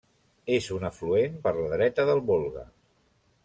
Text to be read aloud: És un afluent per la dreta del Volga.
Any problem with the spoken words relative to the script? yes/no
no